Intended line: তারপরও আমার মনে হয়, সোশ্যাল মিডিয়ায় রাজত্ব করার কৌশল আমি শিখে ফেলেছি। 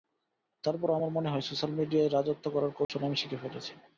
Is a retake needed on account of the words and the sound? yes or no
yes